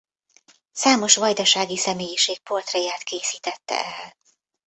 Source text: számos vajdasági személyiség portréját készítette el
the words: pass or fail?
pass